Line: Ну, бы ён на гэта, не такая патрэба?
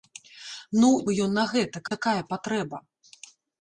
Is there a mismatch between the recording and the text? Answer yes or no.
no